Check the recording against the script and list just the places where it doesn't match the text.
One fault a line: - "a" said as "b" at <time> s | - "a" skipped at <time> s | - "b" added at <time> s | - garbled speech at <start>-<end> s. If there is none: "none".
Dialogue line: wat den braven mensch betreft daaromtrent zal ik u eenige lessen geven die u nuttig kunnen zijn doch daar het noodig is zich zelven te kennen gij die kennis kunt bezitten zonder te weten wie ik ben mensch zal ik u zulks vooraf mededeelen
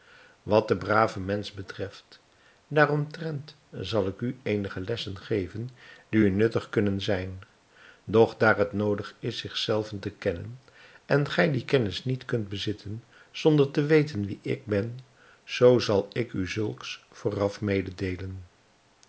- "en" added at 11.1 s
- "niet" added at 12.0 s
- "mensch" said as "zoo" at 15.4 s